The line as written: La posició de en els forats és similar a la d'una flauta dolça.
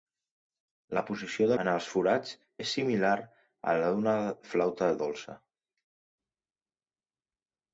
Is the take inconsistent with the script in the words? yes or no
no